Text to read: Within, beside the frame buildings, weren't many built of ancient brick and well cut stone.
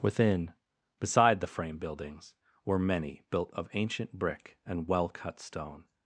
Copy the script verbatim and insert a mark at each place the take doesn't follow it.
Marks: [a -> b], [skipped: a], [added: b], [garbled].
Within, beside the frame buildings, [weren't -> were] many built of ancient brick and well cut stone.